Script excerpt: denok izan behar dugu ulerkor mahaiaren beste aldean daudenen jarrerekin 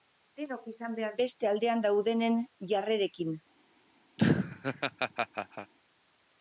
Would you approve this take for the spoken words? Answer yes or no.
no